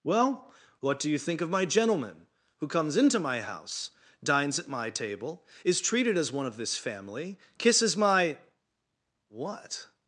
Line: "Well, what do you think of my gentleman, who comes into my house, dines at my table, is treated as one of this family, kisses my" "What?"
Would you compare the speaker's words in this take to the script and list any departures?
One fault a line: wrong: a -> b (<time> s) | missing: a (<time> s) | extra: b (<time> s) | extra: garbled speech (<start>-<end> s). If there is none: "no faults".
no faults